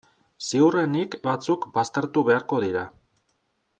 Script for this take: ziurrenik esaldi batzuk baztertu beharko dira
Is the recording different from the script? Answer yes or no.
yes